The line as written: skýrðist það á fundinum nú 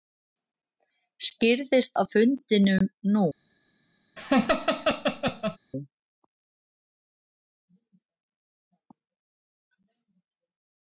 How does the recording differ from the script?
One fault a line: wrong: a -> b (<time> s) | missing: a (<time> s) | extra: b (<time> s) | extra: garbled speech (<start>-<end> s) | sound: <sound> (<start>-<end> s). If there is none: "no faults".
missing: það (1.9 s)
sound: laugh (4.2-5.6 s)